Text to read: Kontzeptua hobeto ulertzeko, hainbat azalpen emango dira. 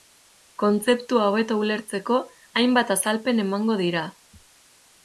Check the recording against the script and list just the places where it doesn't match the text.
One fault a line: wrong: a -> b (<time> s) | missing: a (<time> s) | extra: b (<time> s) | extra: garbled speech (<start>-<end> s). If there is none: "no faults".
no faults